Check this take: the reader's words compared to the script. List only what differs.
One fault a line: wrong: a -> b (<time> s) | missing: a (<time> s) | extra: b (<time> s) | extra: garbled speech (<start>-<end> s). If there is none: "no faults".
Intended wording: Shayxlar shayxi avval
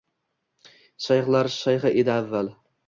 extra: edi (2.0 s)